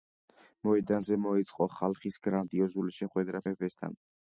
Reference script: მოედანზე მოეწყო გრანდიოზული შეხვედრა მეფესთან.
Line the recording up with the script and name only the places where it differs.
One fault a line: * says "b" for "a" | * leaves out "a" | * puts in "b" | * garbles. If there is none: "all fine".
* puts in "ხალხის"